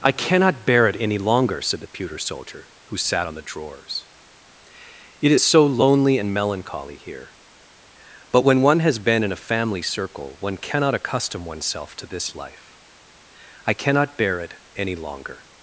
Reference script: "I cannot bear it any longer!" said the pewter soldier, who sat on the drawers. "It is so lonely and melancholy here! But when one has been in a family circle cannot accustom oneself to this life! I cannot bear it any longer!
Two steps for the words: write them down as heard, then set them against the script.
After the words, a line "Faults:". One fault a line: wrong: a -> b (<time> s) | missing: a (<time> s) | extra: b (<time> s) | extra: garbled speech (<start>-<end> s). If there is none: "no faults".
"I cannot bear it any longer!" said the pewter soldier, who sat on the drawers. "It is so lonely and melancholy here! But when one has been in a family circle one cannot accustom oneself to this life! I cannot bear it any longer!
Faults:
extra: one (10.4 s)